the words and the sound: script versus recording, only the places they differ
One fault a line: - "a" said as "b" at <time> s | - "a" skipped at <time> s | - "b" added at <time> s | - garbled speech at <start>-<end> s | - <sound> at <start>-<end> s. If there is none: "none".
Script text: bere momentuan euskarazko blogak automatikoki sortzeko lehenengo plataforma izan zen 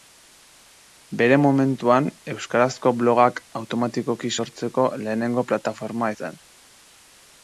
- "izan" skipped at 6.1 s